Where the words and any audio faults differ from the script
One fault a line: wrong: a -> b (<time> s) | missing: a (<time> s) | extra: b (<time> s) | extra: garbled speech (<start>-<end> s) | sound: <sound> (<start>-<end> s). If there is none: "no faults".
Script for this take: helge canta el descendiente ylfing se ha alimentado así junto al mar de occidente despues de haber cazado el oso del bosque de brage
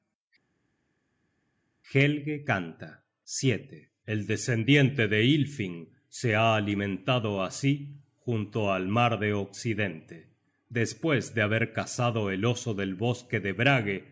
extra: de (5.1 s)